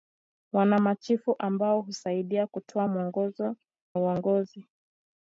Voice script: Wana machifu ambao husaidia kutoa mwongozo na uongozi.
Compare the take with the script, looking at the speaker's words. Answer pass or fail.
fail